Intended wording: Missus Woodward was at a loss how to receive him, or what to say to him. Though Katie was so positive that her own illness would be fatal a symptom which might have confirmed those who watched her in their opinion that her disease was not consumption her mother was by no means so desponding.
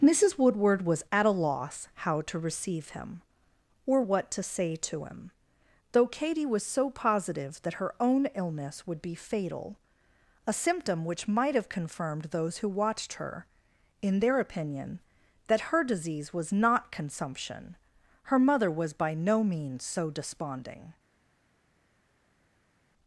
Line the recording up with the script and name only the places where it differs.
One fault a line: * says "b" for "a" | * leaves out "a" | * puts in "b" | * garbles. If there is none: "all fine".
all fine